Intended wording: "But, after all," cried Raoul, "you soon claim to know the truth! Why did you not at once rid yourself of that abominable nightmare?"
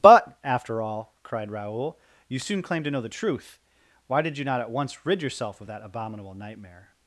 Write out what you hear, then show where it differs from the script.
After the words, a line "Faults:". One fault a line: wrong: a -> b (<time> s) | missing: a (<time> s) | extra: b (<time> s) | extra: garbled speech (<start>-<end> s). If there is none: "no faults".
"But, after all," cried Raoul, "you soon claim to know the truth! Why did you not at once rid yourself of that abominable nightmare?"
Faults:
no faults